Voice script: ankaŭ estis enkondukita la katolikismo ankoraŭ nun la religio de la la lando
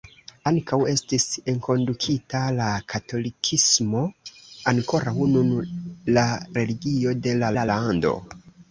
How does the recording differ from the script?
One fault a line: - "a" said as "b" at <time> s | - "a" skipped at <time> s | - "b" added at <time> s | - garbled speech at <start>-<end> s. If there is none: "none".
none